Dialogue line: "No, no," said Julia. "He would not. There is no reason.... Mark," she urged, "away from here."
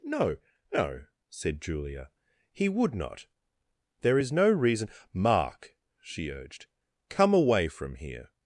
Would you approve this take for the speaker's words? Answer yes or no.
no